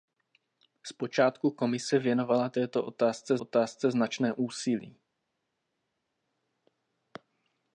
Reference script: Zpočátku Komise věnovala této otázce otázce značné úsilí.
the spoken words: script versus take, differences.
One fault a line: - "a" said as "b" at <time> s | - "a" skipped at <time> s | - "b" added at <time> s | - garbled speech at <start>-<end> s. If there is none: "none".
none